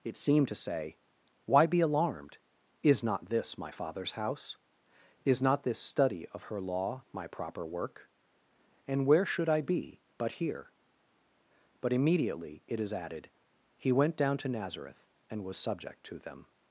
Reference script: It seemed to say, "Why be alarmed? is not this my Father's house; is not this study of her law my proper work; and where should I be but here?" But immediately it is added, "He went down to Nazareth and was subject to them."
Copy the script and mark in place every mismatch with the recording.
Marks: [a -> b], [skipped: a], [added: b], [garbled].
It seemed to say, "Why be alarmed? is not this my Father's house; is not this study of her law my proper work; and where should I be but here?" But immediately it is added, "He went down to Nazareth and was subject to them."